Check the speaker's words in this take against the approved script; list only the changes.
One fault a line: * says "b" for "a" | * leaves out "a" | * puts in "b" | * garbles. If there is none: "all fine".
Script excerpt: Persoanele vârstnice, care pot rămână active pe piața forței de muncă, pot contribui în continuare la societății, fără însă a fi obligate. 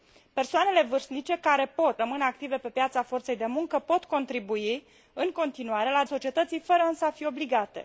all fine